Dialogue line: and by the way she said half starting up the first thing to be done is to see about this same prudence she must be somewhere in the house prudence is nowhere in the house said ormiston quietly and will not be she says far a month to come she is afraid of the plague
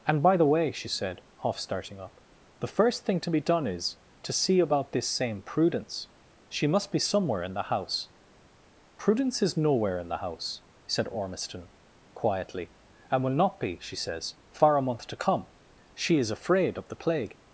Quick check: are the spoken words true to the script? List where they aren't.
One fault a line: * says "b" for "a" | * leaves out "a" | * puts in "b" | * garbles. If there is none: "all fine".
all fine